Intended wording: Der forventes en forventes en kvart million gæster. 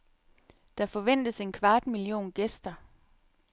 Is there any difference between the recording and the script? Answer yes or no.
yes